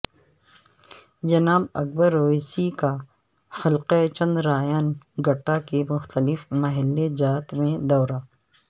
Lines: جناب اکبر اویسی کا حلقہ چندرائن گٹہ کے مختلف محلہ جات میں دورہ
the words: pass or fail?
pass